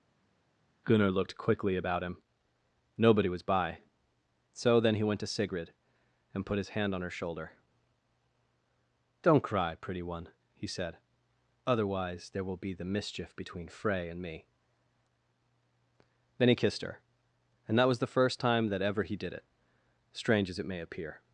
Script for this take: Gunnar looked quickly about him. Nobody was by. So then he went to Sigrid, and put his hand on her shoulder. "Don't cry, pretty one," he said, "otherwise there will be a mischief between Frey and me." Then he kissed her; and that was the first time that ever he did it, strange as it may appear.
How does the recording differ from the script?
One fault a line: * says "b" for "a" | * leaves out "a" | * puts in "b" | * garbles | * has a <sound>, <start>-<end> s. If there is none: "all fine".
* says "the" for "a"